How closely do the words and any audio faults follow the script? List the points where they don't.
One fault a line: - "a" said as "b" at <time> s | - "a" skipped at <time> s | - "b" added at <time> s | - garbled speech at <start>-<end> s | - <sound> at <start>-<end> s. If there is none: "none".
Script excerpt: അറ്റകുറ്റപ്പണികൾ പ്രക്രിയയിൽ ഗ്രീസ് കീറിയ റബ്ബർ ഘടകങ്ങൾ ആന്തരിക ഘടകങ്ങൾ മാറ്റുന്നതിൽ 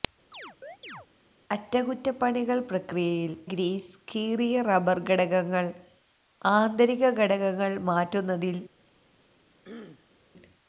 - chirp at 0.3-1.1 s
- throat clearing at 9.6-10.2 s